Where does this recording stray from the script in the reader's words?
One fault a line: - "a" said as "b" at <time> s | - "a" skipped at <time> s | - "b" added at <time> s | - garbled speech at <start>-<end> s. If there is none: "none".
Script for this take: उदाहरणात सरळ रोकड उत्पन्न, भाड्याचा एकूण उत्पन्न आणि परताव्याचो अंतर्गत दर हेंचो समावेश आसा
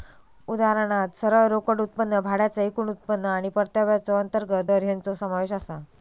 none